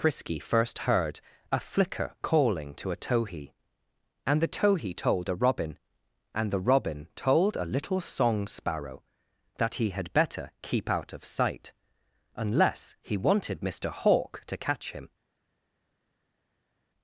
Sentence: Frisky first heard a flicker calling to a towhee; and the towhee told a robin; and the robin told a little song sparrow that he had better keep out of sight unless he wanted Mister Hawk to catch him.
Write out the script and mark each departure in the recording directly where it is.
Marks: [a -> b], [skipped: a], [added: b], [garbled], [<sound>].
Frisky first heard a flicker calling to a towhee; and the towhee told a robin; and the robin told a little song sparrow that he had better keep out of sight unless he wanted Mister Hawk to catch him.